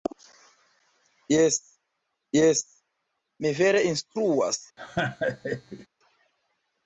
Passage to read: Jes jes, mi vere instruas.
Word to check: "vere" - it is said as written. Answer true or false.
true